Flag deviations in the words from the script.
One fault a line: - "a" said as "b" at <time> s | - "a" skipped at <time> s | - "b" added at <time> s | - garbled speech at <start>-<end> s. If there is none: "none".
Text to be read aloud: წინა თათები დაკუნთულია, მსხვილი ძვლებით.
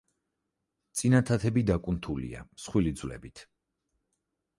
none